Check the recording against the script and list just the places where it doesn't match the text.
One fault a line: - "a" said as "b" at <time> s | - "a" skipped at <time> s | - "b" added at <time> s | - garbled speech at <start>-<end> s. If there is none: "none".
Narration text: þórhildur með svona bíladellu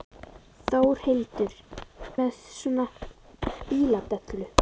none